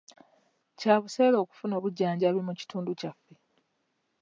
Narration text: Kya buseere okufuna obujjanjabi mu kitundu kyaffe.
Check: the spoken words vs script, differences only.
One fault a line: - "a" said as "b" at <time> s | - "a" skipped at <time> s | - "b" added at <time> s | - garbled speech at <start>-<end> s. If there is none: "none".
none